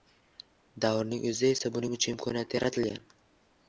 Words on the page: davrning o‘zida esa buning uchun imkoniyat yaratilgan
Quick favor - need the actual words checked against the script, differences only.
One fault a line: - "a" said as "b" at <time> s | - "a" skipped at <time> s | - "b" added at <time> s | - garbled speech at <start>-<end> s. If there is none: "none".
none